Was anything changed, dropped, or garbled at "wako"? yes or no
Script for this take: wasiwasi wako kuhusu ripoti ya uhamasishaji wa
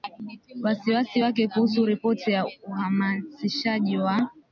yes